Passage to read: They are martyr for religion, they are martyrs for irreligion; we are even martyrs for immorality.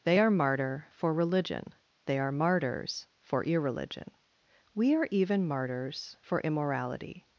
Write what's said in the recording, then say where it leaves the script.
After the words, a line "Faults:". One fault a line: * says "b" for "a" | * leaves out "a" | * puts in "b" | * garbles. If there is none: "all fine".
They are martyr for religion, they are martyrs for irreligion; we are even martyrs for immorality.
Faults:
all fine